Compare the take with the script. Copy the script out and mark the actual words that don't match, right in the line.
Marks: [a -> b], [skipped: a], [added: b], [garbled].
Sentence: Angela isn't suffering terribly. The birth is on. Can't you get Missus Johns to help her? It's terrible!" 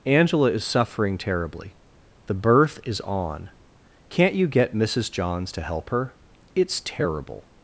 Angela [isn't -> is] suffering terribly. The birth is on. Can't you get Missus Johns to help her? It's terrible!"